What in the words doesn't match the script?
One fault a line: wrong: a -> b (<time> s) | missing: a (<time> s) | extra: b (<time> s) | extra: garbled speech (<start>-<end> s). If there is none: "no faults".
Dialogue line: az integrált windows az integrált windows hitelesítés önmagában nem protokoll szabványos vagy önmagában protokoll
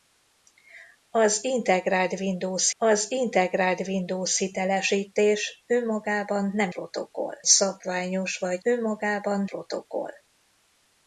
no faults